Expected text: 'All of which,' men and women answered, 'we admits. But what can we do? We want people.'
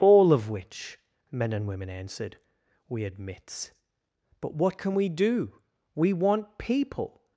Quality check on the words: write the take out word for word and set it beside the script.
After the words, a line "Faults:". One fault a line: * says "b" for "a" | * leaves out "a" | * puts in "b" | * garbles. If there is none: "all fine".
'All of which,' men and women answered, 'we admits. But what can we do? We want people.'
Faults:
all fine